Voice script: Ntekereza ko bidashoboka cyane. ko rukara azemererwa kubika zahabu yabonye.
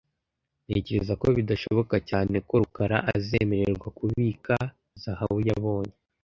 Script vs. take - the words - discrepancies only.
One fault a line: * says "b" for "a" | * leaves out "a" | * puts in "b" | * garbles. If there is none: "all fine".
all fine